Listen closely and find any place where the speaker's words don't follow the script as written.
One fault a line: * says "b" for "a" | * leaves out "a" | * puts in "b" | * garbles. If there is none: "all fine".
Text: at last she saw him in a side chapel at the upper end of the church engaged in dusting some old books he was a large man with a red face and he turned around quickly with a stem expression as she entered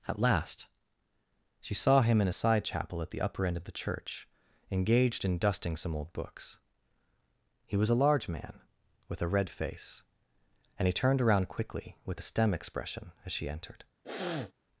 all fine